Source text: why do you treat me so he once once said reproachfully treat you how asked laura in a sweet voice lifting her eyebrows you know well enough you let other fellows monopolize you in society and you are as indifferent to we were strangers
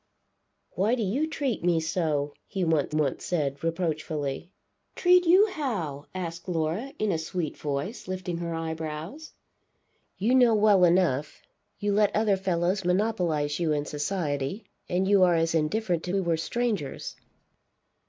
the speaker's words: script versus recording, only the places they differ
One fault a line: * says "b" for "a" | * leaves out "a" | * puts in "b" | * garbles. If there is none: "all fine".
all fine